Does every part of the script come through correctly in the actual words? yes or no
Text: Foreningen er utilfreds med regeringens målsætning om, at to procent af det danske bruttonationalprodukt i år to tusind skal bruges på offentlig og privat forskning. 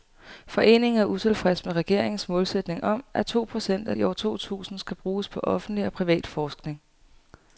no